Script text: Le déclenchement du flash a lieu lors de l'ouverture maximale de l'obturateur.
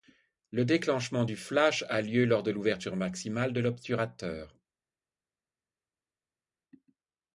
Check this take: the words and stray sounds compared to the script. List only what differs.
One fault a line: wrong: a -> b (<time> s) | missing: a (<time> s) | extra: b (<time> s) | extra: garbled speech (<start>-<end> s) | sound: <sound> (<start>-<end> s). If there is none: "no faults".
no faults